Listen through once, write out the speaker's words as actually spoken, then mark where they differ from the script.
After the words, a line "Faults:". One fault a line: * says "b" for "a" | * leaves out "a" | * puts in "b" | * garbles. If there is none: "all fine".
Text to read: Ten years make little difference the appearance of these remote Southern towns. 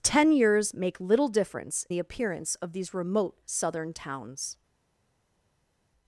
Ten years make little difference the appearance of these remote Southern towns.
Faults:
all fine